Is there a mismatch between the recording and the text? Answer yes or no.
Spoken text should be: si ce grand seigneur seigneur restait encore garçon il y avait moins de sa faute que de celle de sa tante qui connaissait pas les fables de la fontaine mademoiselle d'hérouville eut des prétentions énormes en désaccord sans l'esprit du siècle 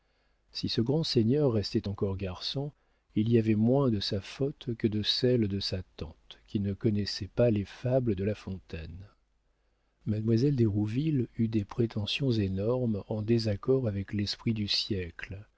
yes